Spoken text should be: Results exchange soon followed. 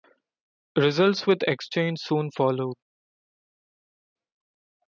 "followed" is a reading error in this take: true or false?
false